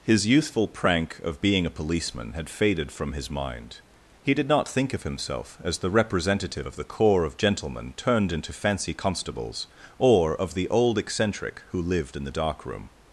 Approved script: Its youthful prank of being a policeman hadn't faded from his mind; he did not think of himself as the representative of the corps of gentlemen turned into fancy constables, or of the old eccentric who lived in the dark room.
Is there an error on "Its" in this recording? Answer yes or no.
yes